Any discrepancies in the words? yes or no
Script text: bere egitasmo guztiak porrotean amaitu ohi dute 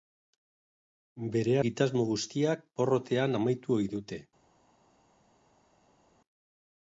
no